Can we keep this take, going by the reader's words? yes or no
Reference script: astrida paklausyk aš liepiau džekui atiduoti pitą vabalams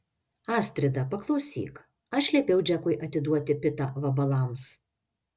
yes